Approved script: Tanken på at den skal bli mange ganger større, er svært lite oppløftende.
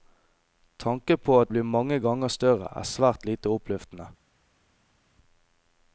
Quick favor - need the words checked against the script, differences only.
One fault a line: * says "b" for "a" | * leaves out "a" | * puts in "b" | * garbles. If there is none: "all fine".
* leaves out "den skal"